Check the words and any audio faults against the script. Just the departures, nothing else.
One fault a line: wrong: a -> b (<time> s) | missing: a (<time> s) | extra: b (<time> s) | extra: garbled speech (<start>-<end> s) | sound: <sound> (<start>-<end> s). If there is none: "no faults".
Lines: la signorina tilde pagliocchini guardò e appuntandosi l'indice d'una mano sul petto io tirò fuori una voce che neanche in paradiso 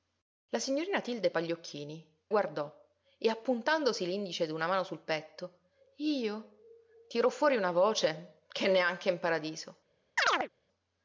sound: chirp (10.2-10.5 s)